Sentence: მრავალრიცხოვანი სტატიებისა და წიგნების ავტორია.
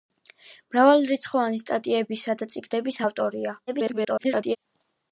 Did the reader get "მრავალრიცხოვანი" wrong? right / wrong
right